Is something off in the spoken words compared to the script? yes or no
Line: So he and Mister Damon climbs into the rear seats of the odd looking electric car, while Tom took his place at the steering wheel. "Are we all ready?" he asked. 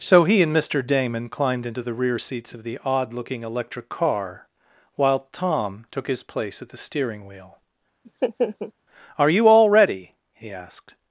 yes